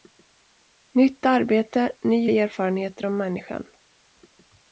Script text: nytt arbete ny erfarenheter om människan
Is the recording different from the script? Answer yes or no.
no